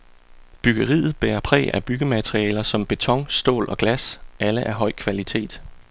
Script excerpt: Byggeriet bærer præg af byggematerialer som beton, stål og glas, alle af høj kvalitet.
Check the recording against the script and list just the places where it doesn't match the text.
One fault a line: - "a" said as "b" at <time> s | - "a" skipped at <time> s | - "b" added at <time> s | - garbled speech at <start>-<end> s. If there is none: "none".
none